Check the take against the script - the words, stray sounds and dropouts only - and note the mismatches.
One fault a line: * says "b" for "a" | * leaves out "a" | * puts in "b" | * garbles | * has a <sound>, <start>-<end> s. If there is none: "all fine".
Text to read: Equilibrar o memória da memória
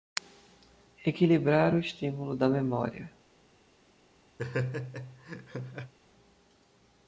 * says "estímulo" for "memória"
* has a laugh, 4.4-5.9 s